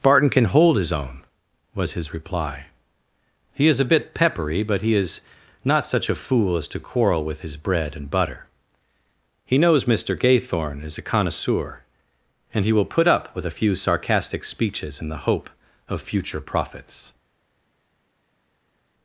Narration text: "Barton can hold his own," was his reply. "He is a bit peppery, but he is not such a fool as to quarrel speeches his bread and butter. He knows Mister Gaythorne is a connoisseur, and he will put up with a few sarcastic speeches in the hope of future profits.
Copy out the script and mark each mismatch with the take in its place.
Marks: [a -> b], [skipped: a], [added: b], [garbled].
"Barton can hold his own," was his reply. "He is a bit peppery, but he is not such a fool as to quarrel [speeches -> with] his bread and butter. He knows Mister Gaythorne is a connoisseur, and he will put up with a few sarcastic speeches in the hope of future profits.